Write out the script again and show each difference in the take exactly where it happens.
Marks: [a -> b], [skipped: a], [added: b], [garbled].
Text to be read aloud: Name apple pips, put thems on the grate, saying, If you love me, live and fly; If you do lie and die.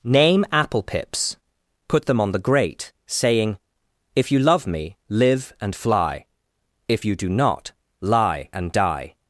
Name apple pips, put [thems -> them] on the grate, saying, If you love me, live and fly; If you do [added: not] lie and die.